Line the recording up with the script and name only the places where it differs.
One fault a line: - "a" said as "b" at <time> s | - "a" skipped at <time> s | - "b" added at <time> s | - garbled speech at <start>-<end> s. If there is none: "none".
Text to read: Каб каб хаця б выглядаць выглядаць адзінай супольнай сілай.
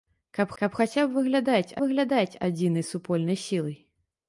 none